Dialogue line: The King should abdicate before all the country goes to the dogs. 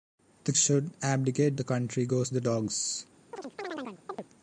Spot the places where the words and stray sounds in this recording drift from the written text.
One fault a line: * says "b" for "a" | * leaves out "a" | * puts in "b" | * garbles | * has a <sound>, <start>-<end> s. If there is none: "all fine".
* leaves out "King"
* leaves out "before all"
* leaves out "to"
* has a chirp, 3.3-4.2 s